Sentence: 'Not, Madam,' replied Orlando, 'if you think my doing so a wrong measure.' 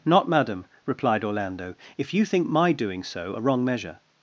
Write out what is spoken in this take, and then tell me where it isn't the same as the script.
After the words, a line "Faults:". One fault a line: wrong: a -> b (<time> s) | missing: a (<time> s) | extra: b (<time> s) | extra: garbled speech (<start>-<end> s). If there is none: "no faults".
'Not, Madam,' replied Orlando, 'if you think my doing so a wrong measure.'
Faults:
no faults